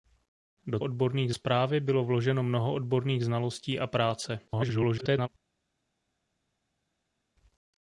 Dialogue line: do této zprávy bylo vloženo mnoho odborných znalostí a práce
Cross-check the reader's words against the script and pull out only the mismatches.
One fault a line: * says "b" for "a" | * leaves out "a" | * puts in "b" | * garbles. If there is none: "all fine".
* says "odborných" for "této"
* garbles